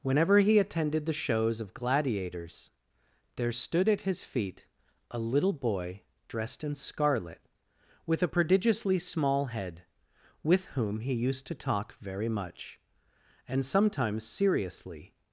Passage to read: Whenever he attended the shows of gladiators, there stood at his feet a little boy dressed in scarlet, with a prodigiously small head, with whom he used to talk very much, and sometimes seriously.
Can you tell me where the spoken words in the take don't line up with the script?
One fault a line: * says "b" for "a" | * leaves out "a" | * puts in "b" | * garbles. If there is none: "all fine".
all fine